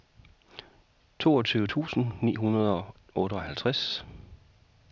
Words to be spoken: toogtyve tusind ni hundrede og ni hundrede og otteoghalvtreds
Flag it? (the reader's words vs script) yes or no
yes